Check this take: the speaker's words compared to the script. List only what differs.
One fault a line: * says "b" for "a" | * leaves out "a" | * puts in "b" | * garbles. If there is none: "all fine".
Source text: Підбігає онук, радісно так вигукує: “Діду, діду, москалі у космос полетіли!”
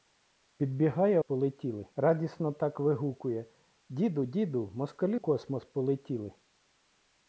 * says "полетіли" for "онук"
* leaves out "у"